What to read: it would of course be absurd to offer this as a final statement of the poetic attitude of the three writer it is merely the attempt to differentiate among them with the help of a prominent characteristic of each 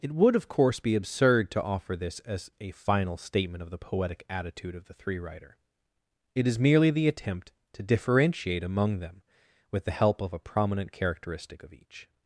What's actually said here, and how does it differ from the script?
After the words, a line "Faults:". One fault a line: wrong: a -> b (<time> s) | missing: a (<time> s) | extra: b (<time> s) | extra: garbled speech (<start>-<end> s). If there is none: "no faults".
it would of course be absurd to offer this as a final statement of the poetic attitude of the three writer it is merely the attempt to differentiate among them with the help of a prominent characteristic of each
Faults:
no faults